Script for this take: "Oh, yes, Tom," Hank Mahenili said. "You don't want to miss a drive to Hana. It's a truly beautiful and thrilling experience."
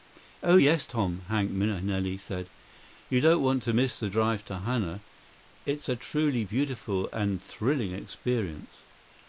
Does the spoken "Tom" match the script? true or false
true